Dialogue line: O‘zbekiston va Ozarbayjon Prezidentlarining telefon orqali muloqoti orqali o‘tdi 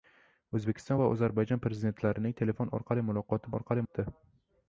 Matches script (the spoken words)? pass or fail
pass